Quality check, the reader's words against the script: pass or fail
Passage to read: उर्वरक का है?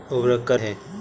pass